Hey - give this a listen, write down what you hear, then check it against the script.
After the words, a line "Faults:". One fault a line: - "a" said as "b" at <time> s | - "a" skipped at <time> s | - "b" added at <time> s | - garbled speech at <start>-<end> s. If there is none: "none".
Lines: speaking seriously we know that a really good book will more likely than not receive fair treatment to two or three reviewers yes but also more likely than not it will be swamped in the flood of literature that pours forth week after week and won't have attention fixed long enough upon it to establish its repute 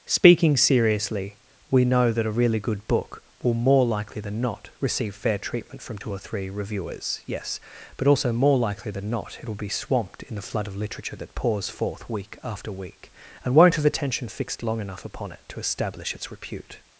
speaking seriously we know that a really good book will more likely than not receive fair treatment from two or three reviewers yes but also more likely than not it will be swamped in the flood of literature that pours forth week after week and won't have attention fixed long enough upon it to establish its repute
Faults:
- "to" said as "from" at 5.8 s